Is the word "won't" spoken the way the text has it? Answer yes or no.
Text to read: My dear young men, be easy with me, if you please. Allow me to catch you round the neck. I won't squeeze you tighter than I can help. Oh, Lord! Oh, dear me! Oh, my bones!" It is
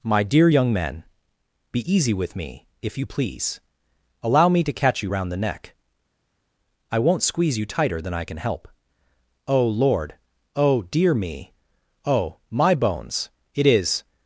yes